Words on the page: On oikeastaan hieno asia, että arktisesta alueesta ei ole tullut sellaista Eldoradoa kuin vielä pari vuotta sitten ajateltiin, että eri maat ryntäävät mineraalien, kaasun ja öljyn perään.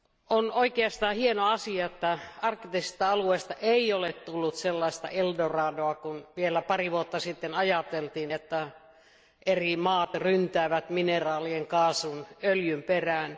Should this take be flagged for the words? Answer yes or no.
no